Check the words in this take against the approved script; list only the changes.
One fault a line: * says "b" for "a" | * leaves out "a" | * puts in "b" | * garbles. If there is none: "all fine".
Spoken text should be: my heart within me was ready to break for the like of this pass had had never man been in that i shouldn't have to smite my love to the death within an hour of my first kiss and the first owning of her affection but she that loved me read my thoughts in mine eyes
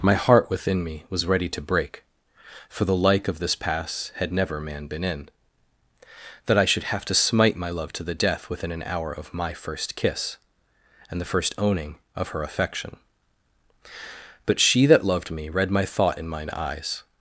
* leaves out "had"
* says "should" for "shouldn't"
* says "thought" for "thoughts"